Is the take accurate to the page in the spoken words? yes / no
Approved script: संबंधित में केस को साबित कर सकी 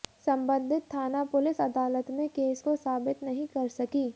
no